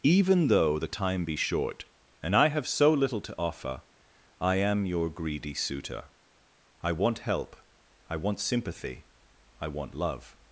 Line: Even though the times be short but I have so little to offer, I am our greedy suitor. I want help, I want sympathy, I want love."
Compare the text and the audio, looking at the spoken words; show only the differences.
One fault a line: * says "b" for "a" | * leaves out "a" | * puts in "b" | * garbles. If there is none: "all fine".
* says "time" for "times"
* says "and" for "but"
* says "your" for "our"